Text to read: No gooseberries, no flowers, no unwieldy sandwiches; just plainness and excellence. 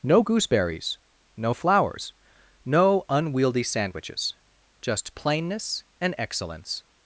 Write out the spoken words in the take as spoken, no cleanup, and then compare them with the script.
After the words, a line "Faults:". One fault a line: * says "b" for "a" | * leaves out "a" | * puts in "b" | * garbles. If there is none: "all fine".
No gooseberries, no flowers, no unwieldy sandwiches; just plainness and excellence.
Faults:
all fine